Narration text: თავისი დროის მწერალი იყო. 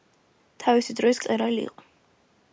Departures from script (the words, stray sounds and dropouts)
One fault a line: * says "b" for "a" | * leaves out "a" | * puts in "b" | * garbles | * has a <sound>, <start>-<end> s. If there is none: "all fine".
* has a dropout, 1.7-1.8 s